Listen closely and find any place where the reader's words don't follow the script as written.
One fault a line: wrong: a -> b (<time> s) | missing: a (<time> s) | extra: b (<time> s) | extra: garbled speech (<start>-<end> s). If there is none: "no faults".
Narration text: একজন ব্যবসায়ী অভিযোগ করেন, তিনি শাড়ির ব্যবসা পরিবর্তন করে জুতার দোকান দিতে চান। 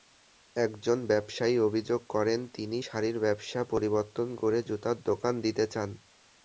no faults